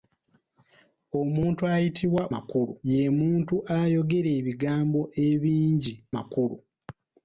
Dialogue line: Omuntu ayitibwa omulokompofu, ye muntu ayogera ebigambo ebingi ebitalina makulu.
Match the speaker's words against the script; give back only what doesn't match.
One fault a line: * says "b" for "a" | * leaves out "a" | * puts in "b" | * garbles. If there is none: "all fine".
* says "makulu" for "omulokompofu"
* leaves out "ebitalina"